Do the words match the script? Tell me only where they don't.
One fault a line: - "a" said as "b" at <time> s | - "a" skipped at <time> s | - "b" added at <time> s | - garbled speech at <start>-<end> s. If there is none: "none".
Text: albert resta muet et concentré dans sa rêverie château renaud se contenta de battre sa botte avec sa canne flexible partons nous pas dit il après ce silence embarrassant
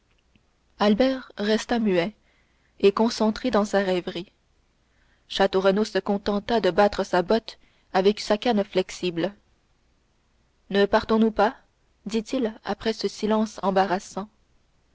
- "ne" added at 10.7 s